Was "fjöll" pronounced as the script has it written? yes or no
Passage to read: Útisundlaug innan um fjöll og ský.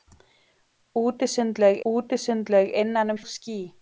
no